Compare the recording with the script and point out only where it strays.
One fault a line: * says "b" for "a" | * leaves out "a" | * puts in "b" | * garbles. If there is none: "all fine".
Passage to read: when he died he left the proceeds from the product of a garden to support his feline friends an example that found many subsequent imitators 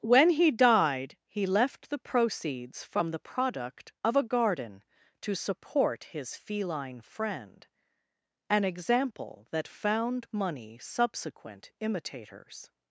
* says "friend" for "friends"
* says "money" for "many"